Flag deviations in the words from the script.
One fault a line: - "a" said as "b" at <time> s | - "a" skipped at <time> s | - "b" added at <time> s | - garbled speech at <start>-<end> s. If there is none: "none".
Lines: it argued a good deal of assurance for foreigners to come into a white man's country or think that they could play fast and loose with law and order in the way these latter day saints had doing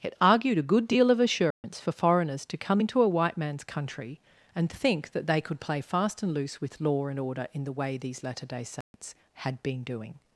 - "or" said as "and" at 4.5 s
- "been" added at 9.6 s